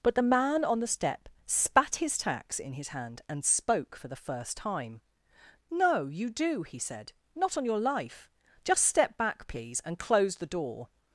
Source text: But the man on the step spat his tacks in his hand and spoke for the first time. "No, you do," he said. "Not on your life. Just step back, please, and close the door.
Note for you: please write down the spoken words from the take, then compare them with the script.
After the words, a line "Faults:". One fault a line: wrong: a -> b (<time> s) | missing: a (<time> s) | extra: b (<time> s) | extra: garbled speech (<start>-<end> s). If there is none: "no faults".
But the man on the step spat his tacks in his hand and spoke for the first time. "No, you do," he said. "Not on your life. Just step back, please, and close the door.
Faults:
no faults